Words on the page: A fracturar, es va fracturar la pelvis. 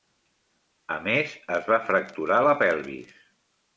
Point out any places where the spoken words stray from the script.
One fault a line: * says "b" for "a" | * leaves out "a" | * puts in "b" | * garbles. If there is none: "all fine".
* says "més" for "fracturar"